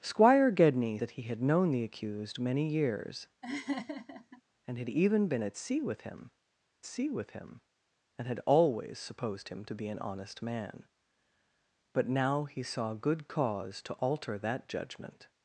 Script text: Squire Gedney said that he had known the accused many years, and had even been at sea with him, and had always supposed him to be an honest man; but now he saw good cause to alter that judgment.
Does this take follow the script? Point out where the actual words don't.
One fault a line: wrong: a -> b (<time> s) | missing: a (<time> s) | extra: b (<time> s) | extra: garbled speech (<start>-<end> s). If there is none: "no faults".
missing: said (1.0 s)
extra: sea with him (6.9 s)